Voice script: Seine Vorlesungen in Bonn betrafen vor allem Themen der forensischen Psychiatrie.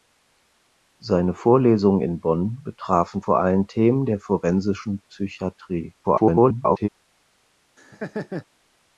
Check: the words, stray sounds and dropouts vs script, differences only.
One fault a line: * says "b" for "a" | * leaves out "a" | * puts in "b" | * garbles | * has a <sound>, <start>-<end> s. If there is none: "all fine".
* garbles
* has a laugh, 7.8-8.5 s